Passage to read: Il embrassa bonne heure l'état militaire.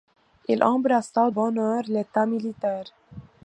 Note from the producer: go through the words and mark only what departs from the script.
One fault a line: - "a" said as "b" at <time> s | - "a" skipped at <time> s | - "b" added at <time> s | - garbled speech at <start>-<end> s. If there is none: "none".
none